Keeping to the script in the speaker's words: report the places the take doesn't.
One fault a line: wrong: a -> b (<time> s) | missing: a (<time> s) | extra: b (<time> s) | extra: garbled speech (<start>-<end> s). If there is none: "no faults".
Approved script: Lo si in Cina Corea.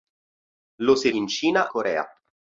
no faults